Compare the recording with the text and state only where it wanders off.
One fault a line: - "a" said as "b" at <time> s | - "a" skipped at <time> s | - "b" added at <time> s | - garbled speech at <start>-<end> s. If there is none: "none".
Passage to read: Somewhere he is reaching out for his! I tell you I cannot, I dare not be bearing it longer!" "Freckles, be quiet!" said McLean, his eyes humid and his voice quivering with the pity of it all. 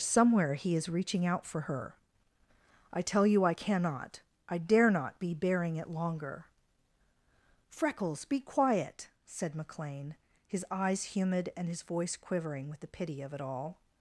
- "his" said as "her" at 1.6 s